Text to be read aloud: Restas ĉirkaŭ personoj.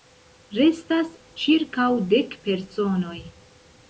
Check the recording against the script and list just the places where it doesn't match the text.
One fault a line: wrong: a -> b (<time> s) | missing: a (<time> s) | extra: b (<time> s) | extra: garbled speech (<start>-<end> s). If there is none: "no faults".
extra: dek (2.1 s)